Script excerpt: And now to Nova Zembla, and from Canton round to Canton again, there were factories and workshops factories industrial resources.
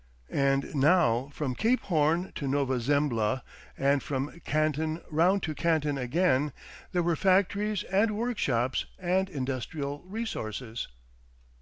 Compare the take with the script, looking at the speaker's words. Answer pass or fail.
fail